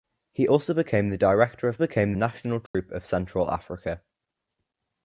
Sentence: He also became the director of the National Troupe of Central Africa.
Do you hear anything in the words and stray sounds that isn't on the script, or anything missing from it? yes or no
yes